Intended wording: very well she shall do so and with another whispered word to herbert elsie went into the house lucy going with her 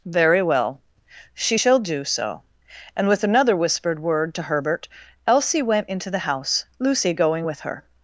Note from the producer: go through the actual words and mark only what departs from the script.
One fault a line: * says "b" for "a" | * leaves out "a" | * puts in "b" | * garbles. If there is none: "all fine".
all fine